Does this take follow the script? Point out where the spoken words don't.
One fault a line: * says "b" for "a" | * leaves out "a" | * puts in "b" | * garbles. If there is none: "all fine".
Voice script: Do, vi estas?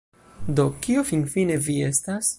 * puts in "kio finfine"